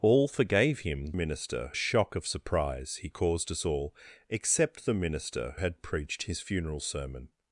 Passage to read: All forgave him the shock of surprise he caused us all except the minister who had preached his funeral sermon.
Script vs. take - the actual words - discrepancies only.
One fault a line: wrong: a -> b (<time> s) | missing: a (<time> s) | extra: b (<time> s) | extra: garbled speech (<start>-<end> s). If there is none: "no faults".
wrong: the -> minister (1.1 s)
missing: who (5.5 s)